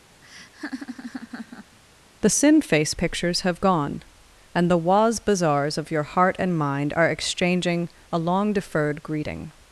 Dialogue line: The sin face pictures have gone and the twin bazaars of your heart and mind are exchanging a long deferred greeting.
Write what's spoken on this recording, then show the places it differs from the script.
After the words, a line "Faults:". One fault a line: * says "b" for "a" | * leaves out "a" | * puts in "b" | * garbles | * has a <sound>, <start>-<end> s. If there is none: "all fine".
The sin face pictures have gone and the waz bazaars of your heart and mind are exchanging a long deferred greeting.
Faults:
* has a laugh, 0.2-1.8 s
* says "waz" for "twin"